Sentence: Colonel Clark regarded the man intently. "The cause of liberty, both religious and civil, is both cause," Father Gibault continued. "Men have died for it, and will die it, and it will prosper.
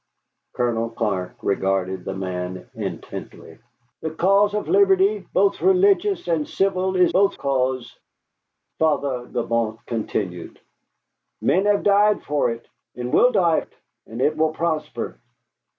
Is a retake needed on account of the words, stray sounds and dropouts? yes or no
no